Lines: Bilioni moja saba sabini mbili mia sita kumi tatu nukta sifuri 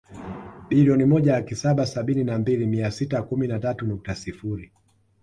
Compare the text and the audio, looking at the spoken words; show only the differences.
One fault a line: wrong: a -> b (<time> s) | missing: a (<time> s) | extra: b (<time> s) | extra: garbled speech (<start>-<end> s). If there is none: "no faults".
extra: laki (1.3 s)
extra: na (2.2 s)
extra: na (3.5 s)